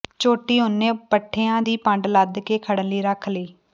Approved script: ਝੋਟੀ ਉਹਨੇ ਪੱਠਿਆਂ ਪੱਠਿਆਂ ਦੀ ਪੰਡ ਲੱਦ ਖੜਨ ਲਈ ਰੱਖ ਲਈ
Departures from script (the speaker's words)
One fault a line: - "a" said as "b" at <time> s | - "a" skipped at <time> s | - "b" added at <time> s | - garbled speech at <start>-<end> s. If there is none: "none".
- "ਪੱਠਿਆਂ" skipped at 1.6 s
- "ਕੇ" added at 2.4 s